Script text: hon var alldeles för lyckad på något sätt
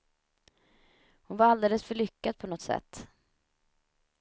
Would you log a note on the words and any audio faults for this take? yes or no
no